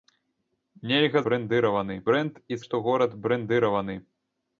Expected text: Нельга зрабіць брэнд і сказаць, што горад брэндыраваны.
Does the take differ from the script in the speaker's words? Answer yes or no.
yes